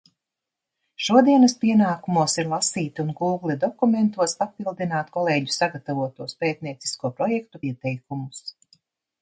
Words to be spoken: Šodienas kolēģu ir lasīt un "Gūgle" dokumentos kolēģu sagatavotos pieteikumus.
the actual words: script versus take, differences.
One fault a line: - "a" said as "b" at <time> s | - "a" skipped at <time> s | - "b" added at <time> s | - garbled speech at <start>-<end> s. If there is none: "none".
- "kolēģu" said as "pienākumos" at 1.6 s
- "papildināt" added at 4.4 s
- "pētniecisko projektu" added at 6.4 s